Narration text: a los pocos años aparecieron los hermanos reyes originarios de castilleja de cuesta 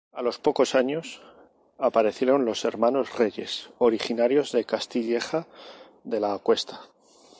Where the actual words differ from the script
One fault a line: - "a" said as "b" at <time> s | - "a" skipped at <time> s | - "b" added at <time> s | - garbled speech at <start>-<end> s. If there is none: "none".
- "la" added at 6.2 s